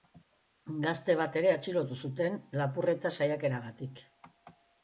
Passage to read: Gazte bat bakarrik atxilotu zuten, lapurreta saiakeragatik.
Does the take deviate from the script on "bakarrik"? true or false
true